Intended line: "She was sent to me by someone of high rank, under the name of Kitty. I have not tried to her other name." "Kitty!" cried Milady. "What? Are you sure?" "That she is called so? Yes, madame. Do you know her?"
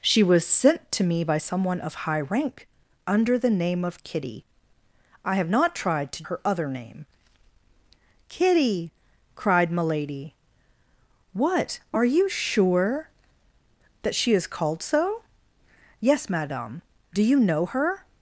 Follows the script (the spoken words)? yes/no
yes